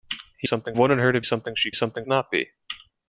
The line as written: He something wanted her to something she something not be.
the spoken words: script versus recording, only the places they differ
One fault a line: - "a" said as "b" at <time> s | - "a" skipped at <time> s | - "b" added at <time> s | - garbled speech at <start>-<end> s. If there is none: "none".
none